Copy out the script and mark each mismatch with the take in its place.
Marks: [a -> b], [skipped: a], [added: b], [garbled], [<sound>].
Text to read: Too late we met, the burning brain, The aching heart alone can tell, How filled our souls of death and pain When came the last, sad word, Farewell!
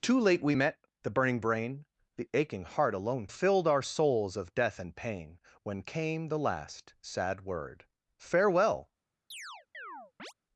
Too late we met, the burning brain, The aching heart alone [skipped: can tell, How] filled our souls of death and pain When came the last, sad word, Farewell! [chirp]